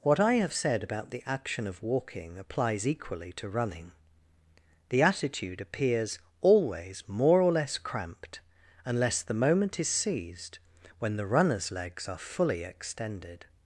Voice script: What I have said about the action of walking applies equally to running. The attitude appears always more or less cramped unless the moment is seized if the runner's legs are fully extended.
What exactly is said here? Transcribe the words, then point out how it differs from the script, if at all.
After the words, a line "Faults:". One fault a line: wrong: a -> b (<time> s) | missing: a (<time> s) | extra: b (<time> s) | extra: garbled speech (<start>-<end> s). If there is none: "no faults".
What I have said about the action of walking applies equally to running. The attitude appears always more or less cramped unless the moment is seized when the runner's legs are fully extended.
Faults:
wrong: if -> when (11.0 s)